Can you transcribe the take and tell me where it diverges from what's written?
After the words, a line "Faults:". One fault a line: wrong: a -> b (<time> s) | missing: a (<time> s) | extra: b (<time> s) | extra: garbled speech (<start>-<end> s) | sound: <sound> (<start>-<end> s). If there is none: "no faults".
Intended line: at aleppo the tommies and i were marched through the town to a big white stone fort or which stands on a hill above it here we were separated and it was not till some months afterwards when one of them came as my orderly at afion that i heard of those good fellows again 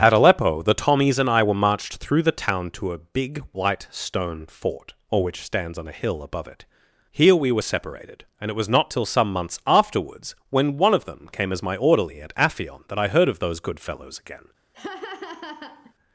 at aleppo the tommies and i were marched through the town to a big white stone fort or which stands on a hill above it here we were separated and it was not till some months afterwards when one of them came as my orderly at afion that i heard of those good fellows again
Faults:
sound: laugh (14.7-15.9 s)